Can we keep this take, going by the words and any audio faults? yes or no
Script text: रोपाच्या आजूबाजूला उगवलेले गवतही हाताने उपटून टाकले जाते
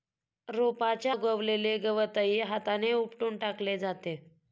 no